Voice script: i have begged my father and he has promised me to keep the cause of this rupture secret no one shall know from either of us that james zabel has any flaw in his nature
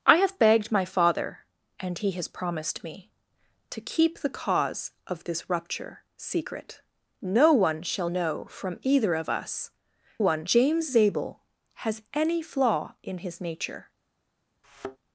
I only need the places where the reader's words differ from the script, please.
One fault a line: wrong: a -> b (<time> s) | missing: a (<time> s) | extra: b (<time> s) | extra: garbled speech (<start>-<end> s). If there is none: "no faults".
wrong: that -> one (10.2 s)